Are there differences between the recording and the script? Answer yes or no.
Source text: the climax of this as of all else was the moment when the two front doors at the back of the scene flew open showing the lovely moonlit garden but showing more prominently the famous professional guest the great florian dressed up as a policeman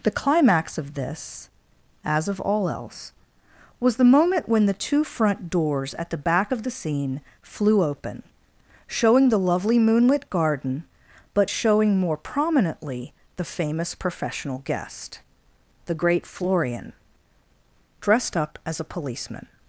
no